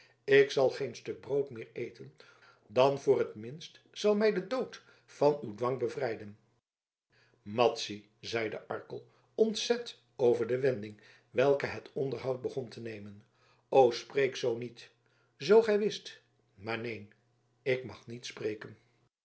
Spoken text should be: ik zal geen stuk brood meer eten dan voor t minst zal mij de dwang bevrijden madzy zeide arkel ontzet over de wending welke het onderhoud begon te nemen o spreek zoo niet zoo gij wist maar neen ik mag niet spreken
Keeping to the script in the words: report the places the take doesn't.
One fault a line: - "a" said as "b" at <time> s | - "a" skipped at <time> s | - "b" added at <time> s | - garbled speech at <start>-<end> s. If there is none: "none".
- "dood van uw" added at 4.5 s